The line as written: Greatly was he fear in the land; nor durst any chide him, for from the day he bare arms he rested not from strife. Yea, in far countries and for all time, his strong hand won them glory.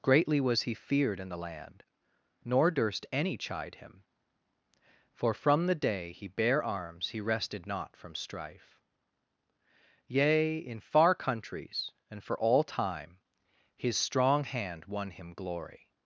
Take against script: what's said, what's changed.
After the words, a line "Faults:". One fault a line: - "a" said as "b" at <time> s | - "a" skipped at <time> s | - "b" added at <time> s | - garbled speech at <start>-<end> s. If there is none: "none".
Greatly was he feared in the land; nor durst any chide him, for from the day he bare arms he rested not from strife. Yea, in far countries and for all time, his strong hand won him glory.
Faults:
- "fear" said as "feared" at 0.7 s
- "them" said as "him" at 15.1 s